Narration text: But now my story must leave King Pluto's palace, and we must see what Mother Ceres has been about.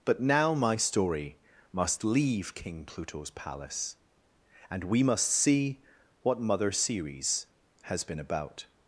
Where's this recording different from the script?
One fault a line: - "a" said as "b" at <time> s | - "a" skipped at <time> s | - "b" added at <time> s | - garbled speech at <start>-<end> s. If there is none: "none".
none